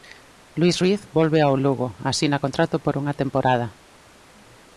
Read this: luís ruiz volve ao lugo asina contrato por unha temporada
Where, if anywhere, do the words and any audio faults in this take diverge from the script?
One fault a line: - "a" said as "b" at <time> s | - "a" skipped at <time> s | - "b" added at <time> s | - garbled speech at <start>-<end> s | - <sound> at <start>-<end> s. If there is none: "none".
none